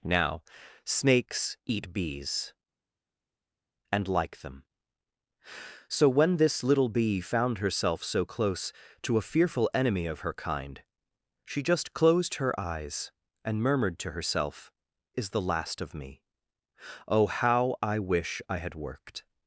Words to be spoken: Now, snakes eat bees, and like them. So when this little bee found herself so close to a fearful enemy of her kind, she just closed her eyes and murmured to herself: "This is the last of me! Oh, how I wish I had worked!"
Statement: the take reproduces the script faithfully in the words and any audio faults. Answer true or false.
false